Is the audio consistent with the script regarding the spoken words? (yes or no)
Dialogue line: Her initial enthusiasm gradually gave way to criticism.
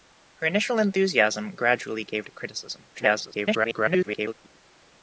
no